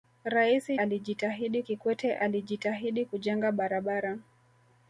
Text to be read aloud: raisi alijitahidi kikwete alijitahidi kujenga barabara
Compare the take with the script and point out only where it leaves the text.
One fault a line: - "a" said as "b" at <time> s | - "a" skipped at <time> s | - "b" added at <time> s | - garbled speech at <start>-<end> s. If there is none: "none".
none